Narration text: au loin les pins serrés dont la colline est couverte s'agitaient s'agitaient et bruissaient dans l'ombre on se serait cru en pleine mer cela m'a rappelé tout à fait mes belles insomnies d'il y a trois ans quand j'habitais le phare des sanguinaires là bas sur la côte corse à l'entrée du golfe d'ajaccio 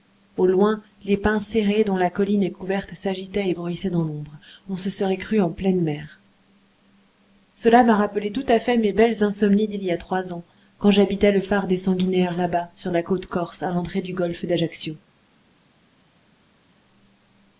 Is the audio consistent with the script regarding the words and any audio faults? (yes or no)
no